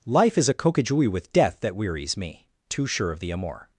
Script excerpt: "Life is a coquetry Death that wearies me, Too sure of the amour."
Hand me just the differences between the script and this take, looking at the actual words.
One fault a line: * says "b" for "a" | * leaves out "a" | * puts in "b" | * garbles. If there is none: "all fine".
* puts in "with"